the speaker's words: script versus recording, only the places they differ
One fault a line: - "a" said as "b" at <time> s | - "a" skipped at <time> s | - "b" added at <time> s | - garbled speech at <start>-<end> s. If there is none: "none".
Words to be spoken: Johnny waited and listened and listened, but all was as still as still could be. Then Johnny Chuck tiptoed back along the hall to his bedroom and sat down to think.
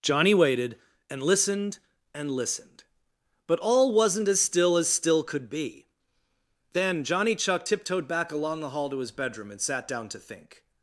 - "was" said as "wasn't" at 3.9 s